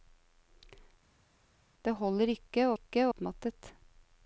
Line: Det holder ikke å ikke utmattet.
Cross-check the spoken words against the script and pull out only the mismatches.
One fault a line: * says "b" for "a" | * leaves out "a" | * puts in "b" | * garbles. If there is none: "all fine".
all fine